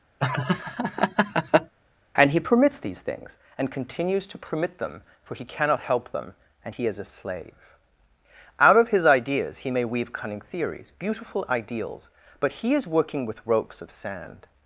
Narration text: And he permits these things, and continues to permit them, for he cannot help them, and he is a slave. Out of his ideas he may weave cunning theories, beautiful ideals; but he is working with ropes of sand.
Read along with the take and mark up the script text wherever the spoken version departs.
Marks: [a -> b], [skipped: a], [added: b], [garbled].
And he permits these things, and continues to permit them, for he cannot help them, and he is a slave. Out of his ideas he may weave cunning theories, beautiful ideals; but he is working with ropes of sand.